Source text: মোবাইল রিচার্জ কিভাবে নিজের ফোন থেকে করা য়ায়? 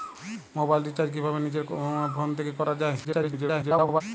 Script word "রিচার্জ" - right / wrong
right